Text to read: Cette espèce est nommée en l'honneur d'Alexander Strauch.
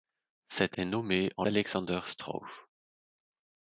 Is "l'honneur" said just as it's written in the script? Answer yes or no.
no